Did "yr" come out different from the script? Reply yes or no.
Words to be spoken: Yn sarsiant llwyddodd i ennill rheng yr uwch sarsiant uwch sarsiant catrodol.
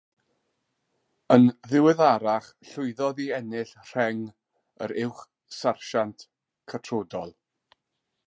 no